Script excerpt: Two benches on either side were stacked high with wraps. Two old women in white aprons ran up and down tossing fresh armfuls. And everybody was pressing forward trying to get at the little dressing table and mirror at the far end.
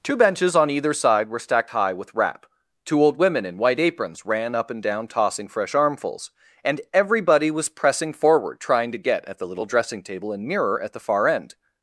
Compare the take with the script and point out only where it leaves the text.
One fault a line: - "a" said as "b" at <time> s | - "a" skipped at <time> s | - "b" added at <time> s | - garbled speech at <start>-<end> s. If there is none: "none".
- "wraps" said as "wrap" at 2.1 s